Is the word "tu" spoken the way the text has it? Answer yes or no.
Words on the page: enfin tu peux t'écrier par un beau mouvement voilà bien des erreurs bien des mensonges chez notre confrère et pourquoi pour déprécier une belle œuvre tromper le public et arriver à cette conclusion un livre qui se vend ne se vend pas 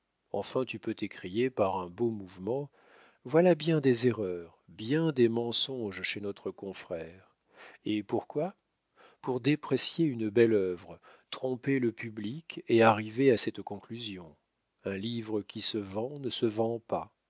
yes